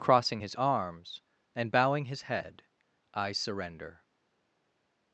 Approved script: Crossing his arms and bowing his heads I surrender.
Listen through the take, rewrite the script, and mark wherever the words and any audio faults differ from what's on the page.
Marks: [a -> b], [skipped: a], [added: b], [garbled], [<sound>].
Crossing his arms and bowing his [heads -> head] I surrender.